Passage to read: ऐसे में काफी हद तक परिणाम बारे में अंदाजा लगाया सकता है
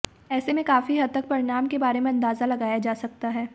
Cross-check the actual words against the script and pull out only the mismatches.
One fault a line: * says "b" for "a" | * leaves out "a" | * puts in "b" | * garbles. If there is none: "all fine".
* puts in "के"
* puts in "जा"